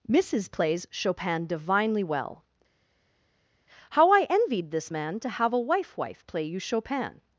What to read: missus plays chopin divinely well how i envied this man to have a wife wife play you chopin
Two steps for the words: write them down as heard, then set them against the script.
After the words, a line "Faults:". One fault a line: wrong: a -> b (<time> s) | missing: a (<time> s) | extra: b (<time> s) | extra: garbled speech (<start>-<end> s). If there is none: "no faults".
missus plays chopin divinely well how i envied this man to have a wife wife play you chopin
Faults:
no faults